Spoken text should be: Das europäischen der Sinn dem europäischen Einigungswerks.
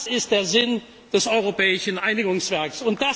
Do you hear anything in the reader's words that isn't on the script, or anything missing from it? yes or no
yes